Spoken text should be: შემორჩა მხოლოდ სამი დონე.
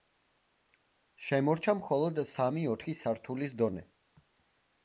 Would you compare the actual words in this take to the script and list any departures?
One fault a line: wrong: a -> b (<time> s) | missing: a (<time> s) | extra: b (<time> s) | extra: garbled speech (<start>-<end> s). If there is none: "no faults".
extra: ოთხი სართულის (2.7 s)